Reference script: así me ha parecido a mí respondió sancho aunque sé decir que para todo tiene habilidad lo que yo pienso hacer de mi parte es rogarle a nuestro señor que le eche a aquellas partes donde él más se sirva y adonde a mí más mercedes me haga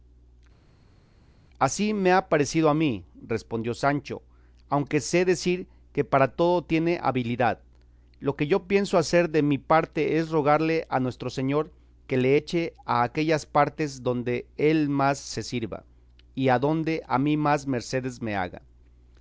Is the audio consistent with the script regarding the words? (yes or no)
yes